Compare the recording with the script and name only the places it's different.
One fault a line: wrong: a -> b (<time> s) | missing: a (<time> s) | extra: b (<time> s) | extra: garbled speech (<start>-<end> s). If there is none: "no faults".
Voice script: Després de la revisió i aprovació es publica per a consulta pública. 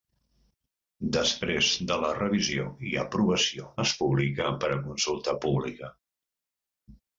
no faults